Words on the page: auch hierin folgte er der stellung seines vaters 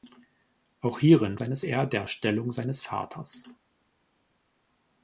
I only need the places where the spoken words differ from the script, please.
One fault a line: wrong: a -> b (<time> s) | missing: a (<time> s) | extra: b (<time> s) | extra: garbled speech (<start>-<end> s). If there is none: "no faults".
wrong: folgte -> seines (1.3 s)